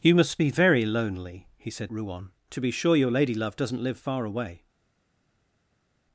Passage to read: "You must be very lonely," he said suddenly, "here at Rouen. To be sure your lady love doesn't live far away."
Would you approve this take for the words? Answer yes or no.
no